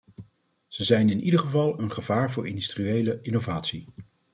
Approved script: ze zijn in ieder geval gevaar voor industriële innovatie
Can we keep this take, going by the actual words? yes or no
no